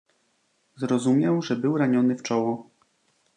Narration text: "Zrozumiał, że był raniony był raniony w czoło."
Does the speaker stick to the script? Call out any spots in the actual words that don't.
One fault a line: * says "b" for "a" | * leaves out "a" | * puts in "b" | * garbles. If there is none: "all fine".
* leaves out "był raniony"